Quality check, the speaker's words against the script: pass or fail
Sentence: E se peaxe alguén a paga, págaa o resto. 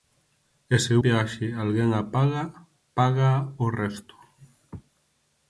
pass